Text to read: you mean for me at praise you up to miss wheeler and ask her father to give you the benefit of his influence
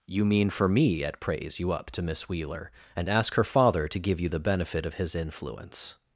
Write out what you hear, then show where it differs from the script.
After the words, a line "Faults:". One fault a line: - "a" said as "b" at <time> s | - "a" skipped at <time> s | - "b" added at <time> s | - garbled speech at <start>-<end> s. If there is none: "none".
you mean for me at praise you up to miss wheeler and ask her father to give you the benefit of his influence
Faults:
none